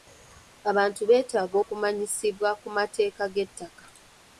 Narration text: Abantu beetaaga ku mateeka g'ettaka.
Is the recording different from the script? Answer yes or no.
yes